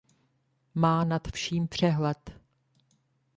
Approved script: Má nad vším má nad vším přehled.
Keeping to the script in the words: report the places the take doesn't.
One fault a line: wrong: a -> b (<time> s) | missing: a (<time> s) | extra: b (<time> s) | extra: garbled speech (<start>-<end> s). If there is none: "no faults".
missing: má nad vším (1.7 s)